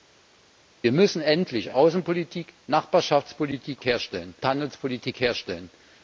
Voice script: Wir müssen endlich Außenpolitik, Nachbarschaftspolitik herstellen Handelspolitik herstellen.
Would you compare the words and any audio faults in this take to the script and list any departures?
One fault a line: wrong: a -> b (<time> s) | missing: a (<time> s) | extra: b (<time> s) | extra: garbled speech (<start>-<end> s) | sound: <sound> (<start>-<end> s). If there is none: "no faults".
no faults